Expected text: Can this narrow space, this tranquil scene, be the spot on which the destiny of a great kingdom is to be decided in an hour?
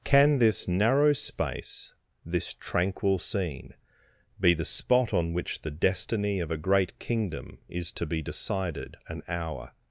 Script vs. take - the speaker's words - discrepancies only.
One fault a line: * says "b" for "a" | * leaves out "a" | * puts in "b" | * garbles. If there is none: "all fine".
* leaves out "in"